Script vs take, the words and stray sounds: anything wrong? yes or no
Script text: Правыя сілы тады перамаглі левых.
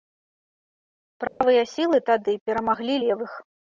yes